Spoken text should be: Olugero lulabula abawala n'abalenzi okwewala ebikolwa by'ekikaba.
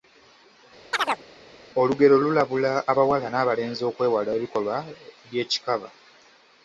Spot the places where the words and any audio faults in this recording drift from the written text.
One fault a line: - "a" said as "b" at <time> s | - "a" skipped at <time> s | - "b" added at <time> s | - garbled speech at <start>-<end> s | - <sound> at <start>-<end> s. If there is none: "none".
- chirp at 0.9-1.2 s